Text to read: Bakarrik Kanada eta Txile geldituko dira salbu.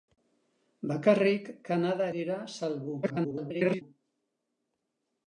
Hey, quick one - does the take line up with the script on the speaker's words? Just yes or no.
no